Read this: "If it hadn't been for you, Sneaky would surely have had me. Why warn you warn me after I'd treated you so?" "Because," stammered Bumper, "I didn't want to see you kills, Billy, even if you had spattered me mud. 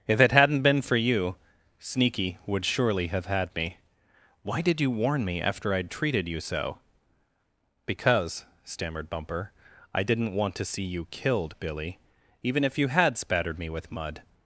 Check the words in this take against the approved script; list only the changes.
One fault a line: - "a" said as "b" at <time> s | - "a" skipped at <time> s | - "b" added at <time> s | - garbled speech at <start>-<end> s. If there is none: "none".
- "warn" said as "did" at 4.6 s
- "kills" said as "killed" at 11.1 s
- "with" added at 13.7 s